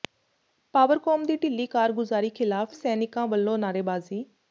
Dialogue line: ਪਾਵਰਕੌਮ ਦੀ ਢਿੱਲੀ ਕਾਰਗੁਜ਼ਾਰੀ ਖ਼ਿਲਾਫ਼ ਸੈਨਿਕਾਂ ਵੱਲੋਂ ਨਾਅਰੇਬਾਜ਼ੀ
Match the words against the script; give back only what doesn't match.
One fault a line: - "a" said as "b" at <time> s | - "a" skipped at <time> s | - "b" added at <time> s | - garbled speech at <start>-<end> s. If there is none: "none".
none